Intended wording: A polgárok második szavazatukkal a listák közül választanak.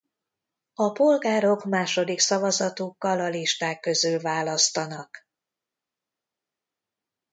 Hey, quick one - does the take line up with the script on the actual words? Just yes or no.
yes